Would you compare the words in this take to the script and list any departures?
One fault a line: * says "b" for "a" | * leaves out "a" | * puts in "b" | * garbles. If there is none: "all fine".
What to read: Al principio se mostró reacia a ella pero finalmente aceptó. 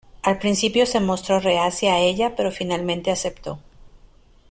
all fine